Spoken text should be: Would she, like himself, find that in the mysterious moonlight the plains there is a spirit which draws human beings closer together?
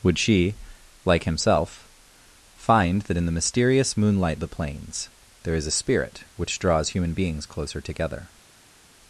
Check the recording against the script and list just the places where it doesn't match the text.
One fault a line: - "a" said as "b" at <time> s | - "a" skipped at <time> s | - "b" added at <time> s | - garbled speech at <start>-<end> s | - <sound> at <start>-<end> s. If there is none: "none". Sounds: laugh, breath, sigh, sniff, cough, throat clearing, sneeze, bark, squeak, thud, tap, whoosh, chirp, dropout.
none